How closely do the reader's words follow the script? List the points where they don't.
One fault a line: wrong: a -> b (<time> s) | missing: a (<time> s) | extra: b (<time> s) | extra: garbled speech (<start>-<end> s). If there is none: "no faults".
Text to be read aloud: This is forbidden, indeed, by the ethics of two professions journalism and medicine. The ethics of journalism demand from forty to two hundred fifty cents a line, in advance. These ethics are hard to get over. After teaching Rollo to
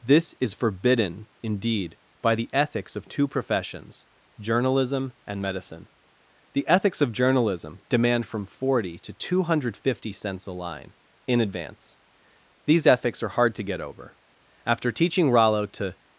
no faults